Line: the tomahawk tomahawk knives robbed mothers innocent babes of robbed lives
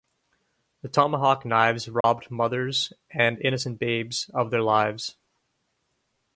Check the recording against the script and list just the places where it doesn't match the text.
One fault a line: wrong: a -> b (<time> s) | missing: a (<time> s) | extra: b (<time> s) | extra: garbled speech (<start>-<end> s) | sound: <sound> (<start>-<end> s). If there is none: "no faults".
missing: tomahawk (1.4 s)
sound: dropout (2.0-2.0 s)
extra: and (3.1 s)
wrong: robbed -> their (4.5 s)